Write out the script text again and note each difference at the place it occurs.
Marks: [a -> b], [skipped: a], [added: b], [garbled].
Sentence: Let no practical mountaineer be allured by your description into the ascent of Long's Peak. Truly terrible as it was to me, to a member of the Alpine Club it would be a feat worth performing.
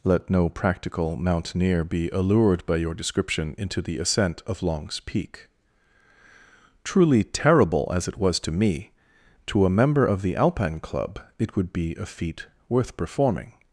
Let no practical mountaineer be allured by your description into the ascent of Long's Peak. Truly terrible as it was to me, to a member of the Alpine Club it would be a feat worth performing.